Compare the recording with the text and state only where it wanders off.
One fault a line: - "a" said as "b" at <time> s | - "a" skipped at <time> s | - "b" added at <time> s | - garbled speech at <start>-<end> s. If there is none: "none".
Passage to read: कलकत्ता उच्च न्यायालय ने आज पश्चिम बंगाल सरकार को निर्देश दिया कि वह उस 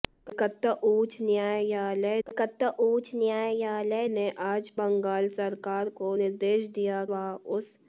- "कलकत्ता उच्च न्यायालय" added at 2.3 s
- "पश्चिम" skipped at 4.7 s
- "कि" skipped at 7.0 s